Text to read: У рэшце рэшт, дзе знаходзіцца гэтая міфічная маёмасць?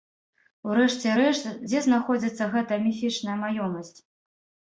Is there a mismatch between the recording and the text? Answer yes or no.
no